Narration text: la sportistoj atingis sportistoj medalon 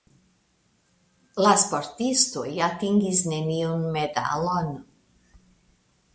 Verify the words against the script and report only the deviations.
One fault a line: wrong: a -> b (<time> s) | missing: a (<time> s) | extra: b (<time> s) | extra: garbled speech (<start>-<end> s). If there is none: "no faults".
wrong: sportistoj -> neniun (3.4 s)